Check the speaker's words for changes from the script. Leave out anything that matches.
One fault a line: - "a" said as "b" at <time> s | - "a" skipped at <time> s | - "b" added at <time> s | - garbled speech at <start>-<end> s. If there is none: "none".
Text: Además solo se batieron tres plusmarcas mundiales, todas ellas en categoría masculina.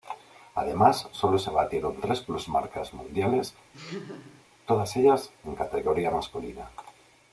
none